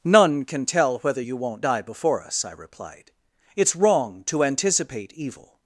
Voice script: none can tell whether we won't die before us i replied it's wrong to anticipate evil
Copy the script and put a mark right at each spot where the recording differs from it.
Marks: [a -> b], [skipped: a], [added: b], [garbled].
none can tell whether [we -> you] won't die before us i replied it's wrong to anticipate evil